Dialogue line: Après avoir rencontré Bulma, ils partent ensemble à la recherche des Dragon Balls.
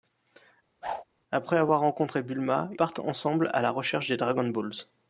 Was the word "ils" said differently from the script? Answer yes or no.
yes